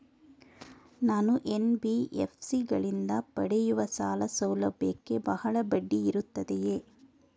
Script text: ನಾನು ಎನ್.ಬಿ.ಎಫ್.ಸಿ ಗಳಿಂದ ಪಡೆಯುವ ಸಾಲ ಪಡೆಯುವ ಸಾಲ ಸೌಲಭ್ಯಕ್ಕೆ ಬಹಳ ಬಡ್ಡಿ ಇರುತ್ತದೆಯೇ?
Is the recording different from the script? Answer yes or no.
yes